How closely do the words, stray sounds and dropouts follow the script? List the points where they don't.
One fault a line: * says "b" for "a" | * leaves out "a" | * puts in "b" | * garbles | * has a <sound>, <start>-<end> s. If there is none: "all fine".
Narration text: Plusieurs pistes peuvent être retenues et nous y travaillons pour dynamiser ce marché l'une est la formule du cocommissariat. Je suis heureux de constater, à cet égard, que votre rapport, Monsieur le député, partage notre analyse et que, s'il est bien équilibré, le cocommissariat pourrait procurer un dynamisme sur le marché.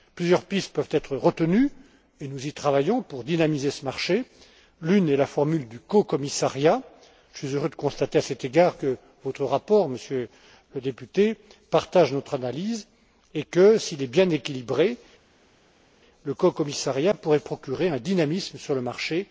all fine